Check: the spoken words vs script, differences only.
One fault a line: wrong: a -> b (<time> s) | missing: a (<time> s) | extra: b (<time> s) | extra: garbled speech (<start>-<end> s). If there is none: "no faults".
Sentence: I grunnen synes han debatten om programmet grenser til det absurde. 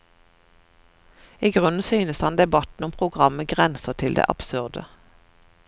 no faults